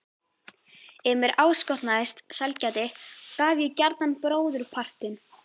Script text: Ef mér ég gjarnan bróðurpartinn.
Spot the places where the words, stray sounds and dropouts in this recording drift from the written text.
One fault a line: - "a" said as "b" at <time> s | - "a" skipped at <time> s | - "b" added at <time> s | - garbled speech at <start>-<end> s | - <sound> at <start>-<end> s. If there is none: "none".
- "áskotnaðist sælgæti gaf" added at 1.4 s